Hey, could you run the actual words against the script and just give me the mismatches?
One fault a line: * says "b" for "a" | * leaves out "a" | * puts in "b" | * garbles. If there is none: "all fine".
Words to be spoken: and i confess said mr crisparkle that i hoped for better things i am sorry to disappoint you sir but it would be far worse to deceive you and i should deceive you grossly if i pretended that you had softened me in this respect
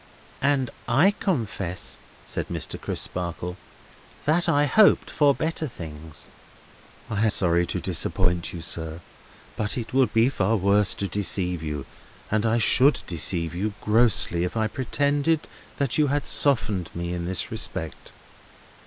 * leaves out "am"